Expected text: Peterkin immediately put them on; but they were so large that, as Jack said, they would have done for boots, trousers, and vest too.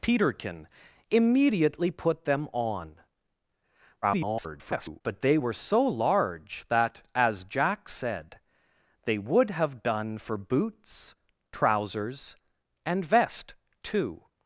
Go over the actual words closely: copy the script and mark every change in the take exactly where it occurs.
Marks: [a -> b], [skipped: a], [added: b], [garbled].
Peterkin immediately put them on; [garbled] but they were so large that, as Jack said, they would have done for boots, trousers, and vest too.